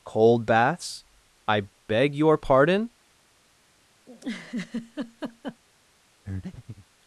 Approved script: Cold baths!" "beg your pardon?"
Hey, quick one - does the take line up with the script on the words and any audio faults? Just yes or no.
no